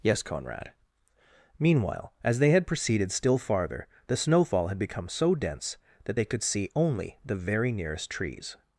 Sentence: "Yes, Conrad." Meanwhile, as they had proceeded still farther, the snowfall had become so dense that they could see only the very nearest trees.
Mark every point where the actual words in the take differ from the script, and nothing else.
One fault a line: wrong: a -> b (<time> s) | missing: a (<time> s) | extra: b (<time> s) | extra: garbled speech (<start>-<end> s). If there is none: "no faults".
no faults